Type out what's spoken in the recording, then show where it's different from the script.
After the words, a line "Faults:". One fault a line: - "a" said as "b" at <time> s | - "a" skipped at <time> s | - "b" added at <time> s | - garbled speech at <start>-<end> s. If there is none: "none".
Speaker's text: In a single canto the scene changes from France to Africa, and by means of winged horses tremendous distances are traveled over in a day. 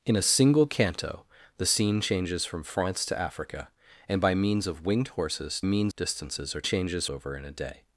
In a single canto the scene changes from France to Africa, and by means of winged horses means distances are changes over in a day.
Faults:
- "tremendous" said as "means" at 5.6 s
- "traveled" said as "changes" at 6.6 s